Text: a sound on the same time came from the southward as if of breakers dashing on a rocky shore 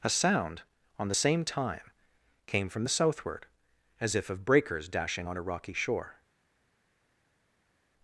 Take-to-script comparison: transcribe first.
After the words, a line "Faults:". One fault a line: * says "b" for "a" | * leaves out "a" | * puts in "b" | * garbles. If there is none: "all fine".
a sound on the same time came from the southward as if of breakers dashing on a rocky shore
Faults:
all fine